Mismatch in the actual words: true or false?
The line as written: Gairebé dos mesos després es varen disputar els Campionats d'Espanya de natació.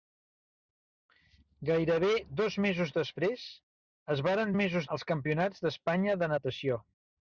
true